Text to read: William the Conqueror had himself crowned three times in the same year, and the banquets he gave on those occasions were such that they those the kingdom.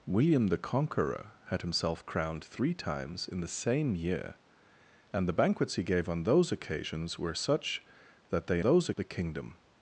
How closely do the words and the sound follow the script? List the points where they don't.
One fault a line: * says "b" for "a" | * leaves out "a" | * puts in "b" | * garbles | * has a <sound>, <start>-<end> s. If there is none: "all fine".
all fine